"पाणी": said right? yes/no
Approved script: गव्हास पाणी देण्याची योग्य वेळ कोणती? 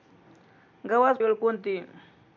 no